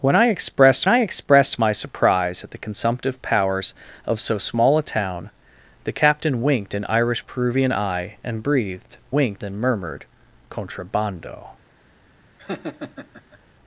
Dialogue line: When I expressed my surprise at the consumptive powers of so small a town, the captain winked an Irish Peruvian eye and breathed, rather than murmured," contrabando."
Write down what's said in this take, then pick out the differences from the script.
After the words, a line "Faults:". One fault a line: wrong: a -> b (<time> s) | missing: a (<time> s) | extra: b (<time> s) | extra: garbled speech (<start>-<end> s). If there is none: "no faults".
When I expressed I expressed my surprise at the consumptive powers of so small a town, the captain winked an Irish Peruvian eye and breathed, winked than murmured," contrabando."
Faults:
extra: I expressed (0.9 s)
wrong: rather -> winked (9.1 s)